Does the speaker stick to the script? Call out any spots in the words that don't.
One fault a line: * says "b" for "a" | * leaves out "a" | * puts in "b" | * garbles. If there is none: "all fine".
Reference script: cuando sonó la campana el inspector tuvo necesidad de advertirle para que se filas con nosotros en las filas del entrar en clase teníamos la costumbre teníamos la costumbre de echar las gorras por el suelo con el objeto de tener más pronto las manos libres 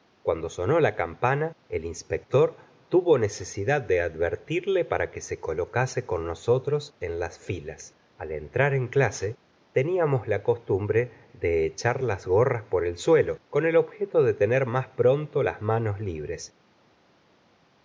* says "colocase" for "filas"
* says "al" for "del"
* leaves out "teníamos la costumbre"